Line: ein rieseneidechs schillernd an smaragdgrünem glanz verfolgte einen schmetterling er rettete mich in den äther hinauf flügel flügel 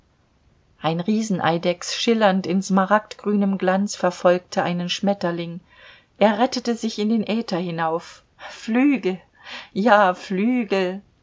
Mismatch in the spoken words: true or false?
true